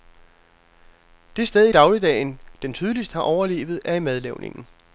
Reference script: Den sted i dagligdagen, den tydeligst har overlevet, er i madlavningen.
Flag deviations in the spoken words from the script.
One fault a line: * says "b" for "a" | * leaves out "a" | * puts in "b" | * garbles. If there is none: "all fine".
* says "Det" for "Den"